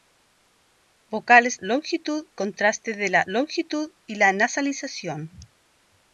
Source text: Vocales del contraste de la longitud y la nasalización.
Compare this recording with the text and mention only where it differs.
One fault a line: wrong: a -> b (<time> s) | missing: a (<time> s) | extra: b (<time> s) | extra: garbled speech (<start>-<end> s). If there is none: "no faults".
wrong: del -> longitud (1.6 s)